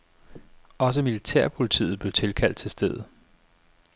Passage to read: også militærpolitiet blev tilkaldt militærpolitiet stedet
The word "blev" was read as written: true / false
true